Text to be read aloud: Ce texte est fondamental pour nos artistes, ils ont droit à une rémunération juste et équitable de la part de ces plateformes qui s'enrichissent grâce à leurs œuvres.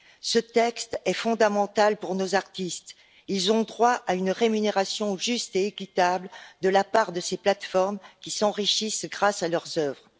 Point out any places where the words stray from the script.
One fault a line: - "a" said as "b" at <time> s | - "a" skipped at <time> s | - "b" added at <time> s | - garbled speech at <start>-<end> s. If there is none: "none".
none